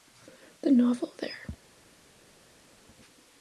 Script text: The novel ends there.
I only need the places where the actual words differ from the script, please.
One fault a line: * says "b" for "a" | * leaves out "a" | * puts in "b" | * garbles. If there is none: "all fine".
* leaves out "ends"